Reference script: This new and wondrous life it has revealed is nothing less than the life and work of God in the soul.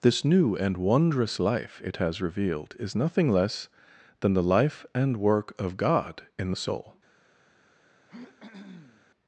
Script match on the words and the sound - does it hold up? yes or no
no